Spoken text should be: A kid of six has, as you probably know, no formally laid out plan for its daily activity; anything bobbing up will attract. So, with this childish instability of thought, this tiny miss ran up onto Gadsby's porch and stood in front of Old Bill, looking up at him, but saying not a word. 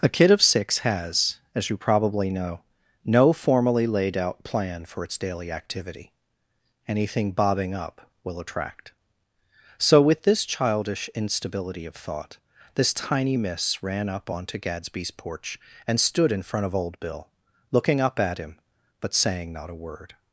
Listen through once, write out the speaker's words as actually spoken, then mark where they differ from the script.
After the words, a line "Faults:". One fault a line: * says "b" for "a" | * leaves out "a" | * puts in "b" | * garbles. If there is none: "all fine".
A kid of six has, as you probably know, no formally laid out plan for its daily activity; anything bobbing up will attract. So, with this childish instability of thought, this tiny miss ran up onto Gadsby's porch and stood in front of Old Bill, looking up at him, but saying not a word.
Faults:
all fine